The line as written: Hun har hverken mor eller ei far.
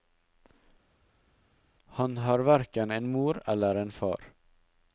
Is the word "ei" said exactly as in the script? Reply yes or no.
no